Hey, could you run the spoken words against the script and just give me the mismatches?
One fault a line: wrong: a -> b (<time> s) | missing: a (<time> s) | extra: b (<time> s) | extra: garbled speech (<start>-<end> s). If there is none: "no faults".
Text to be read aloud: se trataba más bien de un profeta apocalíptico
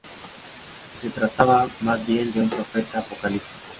no faults